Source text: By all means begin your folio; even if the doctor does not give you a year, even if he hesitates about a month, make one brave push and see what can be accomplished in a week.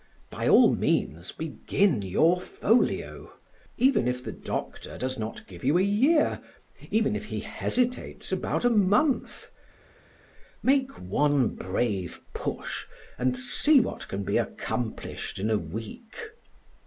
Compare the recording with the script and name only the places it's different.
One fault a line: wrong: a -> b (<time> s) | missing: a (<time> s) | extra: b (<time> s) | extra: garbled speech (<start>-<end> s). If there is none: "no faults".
no faults